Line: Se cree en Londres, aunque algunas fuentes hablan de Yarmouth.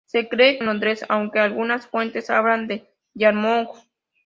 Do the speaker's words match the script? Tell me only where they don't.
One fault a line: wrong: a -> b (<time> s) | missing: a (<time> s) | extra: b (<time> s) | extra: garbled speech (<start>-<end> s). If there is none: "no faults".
no faults